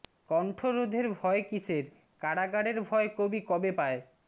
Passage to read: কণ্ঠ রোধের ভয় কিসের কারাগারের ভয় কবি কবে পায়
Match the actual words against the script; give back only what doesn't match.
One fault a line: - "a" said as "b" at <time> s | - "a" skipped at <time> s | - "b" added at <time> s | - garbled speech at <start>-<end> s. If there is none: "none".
none